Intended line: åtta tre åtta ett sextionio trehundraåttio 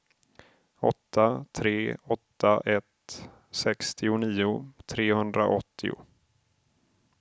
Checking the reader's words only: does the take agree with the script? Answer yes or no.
yes